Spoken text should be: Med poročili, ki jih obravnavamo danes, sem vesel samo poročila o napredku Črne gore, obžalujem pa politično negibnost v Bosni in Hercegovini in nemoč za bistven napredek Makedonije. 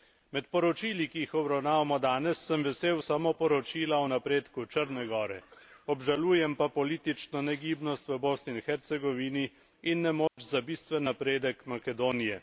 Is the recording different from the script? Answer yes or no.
no